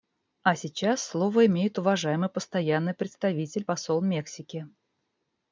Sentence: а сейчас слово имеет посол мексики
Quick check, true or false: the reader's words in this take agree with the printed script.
false